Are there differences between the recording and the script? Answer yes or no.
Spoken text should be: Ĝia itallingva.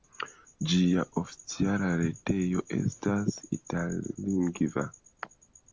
yes